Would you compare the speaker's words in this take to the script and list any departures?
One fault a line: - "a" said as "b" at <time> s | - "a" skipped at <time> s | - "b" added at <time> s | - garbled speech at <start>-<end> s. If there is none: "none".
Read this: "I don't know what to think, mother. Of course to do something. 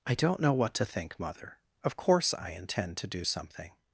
- "I intend" added at 2.3 s